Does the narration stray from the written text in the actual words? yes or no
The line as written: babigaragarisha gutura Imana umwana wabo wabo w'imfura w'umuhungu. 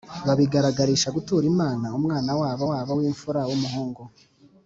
no